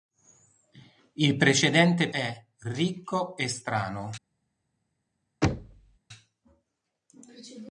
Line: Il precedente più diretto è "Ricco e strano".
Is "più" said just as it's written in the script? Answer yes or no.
no